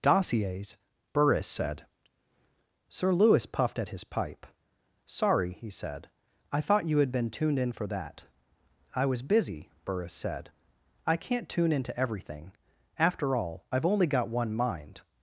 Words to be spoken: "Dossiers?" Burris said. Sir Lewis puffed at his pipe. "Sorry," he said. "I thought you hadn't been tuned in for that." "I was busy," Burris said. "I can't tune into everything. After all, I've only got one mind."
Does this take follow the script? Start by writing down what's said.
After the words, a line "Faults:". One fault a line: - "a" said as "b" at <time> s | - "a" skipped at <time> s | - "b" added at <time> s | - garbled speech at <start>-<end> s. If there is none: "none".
"Dossiers?" Burris said. Sir Lewis puffed at his pipe. "Sorry," he said. "I thought you had been tuned in for that." "I was busy," Burris said. "I can't tune into everything. After all, I've only got one mind."
Faults:
- "hadn't" said as "had" at 7.0 s